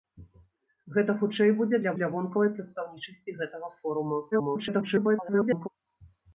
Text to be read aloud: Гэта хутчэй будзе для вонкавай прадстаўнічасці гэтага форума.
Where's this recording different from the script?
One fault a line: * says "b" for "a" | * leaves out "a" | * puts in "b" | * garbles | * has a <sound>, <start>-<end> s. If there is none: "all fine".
* puts in "для"
* garbles